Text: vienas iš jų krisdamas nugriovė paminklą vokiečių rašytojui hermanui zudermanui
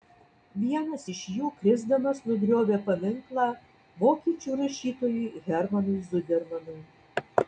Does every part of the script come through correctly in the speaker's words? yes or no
yes